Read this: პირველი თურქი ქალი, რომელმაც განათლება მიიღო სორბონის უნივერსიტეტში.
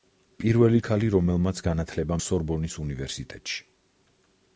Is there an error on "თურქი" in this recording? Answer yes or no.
yes